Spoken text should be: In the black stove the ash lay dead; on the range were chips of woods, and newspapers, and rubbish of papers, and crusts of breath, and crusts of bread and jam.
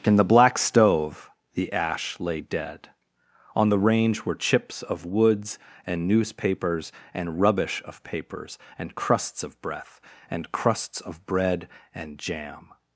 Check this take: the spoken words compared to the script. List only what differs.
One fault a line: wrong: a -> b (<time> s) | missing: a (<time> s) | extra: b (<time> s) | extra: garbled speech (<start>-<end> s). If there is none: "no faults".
no faults